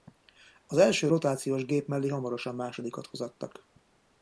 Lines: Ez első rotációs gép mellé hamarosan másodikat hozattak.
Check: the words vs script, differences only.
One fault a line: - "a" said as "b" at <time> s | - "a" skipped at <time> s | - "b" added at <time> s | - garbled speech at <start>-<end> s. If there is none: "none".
- "Ez" said as "Az" at 0.7 s